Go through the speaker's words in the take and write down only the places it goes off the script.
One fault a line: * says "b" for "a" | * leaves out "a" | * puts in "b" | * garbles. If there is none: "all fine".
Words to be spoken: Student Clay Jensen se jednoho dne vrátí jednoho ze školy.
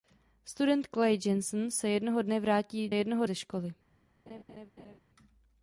all fine